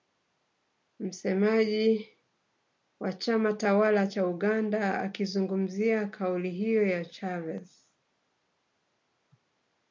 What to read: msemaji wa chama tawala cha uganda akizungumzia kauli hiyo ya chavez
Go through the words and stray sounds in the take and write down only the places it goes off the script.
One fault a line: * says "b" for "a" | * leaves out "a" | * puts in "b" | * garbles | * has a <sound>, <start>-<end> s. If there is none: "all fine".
all fine